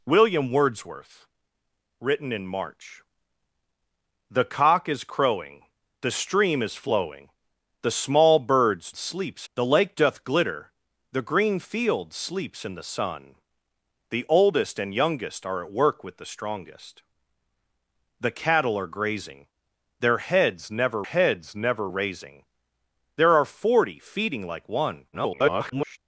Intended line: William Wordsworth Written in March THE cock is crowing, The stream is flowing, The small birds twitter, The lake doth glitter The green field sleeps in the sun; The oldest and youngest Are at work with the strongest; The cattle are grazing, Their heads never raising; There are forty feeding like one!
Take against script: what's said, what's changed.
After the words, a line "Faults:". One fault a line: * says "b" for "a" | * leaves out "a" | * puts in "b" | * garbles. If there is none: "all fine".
William Wordsworth Written in March THE cock is crowing, The stream is flowing, The small birds sleeps, The lake doth glitter The green field sleeps in the sun; The oldest and youngest Are at work with the strongest; The cattle are grazing, Their heads never heads never raising; There are forty feeding like one! [garbled]
Faults:
* says "sleeps" for "twitter"
* puts in "heads never"
* garbles